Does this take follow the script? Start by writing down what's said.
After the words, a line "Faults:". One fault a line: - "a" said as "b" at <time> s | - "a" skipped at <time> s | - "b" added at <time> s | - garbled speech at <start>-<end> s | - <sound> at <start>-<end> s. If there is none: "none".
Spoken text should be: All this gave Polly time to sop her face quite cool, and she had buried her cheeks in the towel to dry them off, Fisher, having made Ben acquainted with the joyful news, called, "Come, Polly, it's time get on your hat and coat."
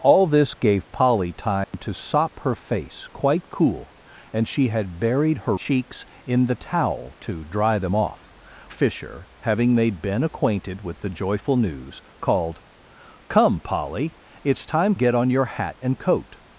All this gave Polly time to sop her face quite cool, and she had buried her cheeks in the towel to dry them off, Fisher, having made Ben acquainted with the joyful news, called, "Come, Polly, it's time get on your hat and coat."
Faults:
- dropout at 1.6-1.7 s